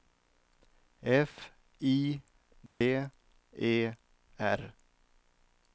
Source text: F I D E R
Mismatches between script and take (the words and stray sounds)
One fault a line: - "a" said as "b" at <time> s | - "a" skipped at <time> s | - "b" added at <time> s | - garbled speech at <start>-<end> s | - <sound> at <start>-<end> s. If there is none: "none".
- dropout at 2.7-2.8 s